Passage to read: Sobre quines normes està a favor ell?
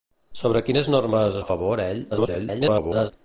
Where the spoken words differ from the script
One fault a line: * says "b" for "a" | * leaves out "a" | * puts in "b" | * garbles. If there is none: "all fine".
* leaves out "està"
* garbles